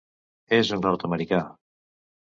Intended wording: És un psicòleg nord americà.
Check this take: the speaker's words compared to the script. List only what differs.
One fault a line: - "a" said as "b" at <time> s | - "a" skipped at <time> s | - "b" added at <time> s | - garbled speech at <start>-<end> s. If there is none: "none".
- "psicòleg" skipped at 0.8 s